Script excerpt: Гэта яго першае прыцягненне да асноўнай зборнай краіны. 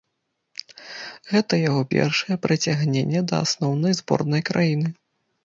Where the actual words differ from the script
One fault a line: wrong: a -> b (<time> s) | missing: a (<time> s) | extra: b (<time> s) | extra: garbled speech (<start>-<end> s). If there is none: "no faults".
no faults